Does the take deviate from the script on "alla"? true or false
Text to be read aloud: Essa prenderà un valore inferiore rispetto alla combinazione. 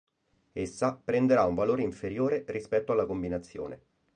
false